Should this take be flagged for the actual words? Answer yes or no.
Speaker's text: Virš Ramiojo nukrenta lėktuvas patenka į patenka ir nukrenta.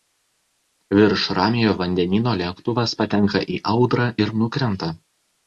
yes